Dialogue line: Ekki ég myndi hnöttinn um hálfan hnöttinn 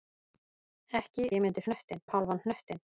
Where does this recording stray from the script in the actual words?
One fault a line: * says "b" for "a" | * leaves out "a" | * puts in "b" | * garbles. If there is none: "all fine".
all fine